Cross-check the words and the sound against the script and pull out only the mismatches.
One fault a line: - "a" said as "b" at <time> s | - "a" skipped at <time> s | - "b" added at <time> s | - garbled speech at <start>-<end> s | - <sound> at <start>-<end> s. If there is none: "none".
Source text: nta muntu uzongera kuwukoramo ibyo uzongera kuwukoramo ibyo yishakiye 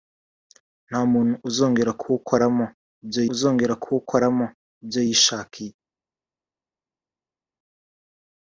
none